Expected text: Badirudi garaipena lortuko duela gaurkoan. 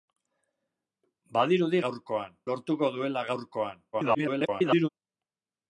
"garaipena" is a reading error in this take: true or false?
true